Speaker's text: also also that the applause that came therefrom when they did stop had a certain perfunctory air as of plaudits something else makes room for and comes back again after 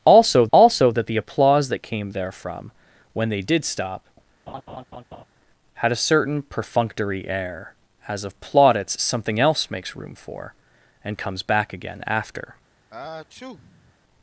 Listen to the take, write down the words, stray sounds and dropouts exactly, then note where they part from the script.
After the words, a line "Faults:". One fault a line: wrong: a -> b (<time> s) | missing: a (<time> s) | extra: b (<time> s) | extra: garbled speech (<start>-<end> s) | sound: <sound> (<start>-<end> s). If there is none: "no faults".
also also that the applause that came therefrom when they did stop had a certain perfunctory air as of plaudits something else makes room for and comes back again after
Faults:
sound: laugh (4.5-5.2 s)
sound: sneeze (12.9-13.9 s)